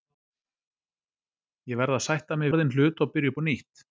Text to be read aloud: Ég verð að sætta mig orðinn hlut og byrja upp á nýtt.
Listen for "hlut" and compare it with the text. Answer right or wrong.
right